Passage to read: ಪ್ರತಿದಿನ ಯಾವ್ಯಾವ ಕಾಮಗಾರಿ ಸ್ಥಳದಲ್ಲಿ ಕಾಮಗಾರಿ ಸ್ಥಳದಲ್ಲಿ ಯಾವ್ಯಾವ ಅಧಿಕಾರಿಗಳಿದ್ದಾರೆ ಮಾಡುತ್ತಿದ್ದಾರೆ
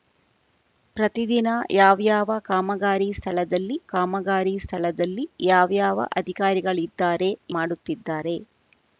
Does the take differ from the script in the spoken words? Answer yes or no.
no